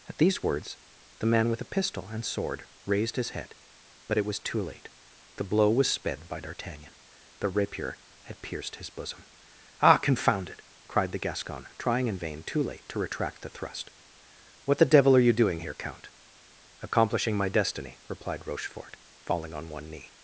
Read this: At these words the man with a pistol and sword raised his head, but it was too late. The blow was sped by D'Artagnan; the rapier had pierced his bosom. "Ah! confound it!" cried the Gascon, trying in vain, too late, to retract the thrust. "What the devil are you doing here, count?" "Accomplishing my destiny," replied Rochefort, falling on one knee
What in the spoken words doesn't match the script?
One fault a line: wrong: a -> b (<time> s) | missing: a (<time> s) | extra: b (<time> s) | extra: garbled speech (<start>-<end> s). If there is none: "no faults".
no faults